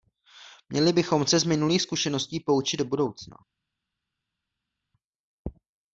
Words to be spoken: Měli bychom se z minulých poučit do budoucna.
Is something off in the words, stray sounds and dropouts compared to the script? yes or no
yes